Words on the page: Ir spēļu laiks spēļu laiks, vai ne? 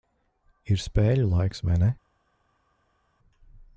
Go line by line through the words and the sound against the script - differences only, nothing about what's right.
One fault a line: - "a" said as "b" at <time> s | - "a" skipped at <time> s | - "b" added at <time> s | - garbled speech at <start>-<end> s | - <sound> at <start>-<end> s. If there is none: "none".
- "spēļu laiks" skipped at 1.6 s